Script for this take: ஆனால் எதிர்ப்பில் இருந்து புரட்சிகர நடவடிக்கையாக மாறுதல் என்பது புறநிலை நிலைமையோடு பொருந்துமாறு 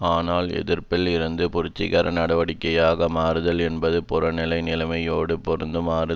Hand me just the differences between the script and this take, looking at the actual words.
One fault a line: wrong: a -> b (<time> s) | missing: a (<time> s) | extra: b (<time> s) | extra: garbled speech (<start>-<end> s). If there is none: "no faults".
no faults